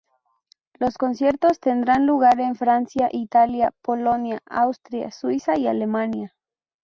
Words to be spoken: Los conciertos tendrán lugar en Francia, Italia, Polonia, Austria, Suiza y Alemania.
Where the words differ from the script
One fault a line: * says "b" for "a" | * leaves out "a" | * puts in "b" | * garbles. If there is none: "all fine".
all fine